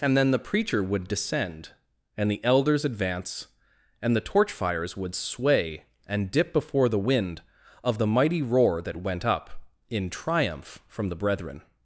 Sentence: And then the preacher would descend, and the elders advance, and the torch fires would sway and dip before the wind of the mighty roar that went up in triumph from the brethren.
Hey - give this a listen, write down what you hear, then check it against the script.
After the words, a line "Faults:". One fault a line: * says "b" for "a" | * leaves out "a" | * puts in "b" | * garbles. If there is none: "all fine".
And then the preacher would descend, and the elders advance, and the torch fires would sway and dip before the wind of the mighty roar that went up in triumph from the brethren.
Faults:
all fine